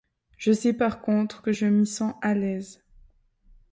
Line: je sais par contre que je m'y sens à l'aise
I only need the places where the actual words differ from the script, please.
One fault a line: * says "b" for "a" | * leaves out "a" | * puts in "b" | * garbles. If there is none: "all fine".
all fine